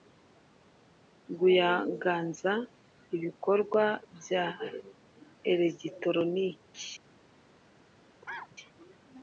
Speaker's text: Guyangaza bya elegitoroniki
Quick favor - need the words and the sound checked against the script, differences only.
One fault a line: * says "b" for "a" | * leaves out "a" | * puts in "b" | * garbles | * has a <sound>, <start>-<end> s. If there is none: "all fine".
* puts in "ibikorwa"
* has a cough, 8.2-8.6 s